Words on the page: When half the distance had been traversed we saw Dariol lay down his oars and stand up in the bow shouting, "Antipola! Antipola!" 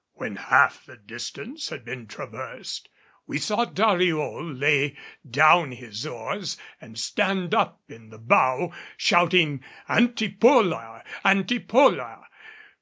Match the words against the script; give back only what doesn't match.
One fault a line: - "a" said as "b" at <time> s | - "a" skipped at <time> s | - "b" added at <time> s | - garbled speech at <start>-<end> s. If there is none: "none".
none